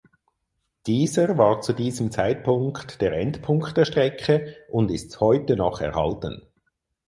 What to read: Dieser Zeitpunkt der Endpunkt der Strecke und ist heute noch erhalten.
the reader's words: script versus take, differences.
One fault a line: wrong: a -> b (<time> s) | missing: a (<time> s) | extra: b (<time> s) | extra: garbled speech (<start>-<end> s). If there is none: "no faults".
extra: war zu diesem (1.4 s)